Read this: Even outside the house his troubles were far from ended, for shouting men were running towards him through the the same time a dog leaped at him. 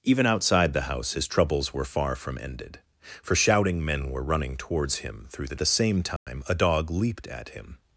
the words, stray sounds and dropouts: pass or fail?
fail